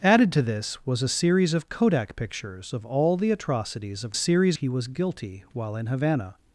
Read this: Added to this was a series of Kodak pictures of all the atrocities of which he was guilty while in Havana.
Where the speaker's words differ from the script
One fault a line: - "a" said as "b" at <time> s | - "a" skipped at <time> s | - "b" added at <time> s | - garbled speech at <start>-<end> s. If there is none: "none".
- "which" said as "series" at 4.1 s